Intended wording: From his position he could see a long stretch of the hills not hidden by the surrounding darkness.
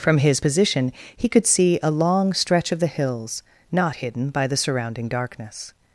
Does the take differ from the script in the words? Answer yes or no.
no